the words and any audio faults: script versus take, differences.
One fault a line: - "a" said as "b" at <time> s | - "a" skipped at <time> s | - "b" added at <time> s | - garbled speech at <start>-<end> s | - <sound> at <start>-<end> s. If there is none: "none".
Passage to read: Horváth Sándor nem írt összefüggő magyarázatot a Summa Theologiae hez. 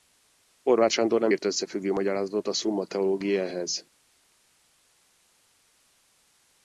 none